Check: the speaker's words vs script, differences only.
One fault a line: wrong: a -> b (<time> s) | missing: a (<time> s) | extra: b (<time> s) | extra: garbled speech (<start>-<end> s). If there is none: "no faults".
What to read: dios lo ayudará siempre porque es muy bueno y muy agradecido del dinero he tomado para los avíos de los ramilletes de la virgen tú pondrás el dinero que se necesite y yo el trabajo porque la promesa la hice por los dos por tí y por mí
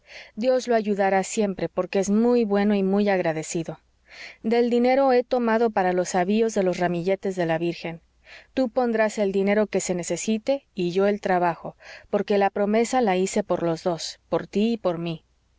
no faults